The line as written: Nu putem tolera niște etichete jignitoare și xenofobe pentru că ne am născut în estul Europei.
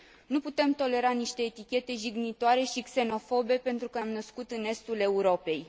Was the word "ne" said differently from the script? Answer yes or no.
yes